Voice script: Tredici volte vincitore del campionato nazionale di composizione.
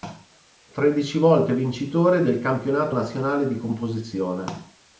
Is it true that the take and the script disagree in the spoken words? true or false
false